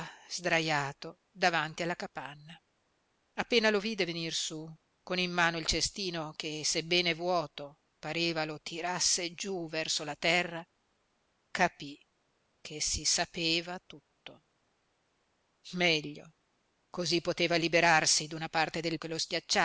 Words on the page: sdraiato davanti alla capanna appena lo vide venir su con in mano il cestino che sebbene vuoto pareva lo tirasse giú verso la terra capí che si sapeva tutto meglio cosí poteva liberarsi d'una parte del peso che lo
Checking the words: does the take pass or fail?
fail